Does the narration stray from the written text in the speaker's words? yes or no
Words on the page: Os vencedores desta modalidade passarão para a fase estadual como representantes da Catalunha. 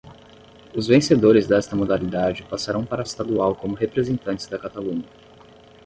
yes